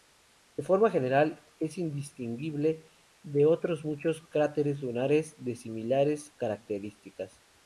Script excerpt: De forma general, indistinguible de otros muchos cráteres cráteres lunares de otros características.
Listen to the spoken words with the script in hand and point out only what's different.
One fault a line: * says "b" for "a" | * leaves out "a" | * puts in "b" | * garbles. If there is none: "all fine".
* puts in "es"
* leaves out "cráteres"
* says "similares" for "otros"